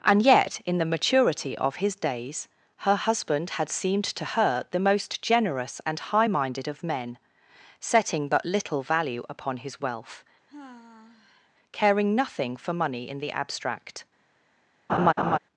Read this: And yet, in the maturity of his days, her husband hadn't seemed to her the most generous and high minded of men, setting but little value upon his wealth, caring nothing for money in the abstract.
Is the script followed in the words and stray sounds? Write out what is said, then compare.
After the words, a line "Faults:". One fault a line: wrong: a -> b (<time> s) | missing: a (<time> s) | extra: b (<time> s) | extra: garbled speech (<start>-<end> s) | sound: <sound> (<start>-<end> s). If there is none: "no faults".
And yet, in the maturity of his days, her husband had seemed to her the most generous and high minded of men, setting but little value upon his wealth, caring nothing for money in the abstract.
Faults:
wrong: hadn't -> had (3.5 s)
sound: sigh (10.5-11.5 s)
sound: laugh (14.9-15.4 s)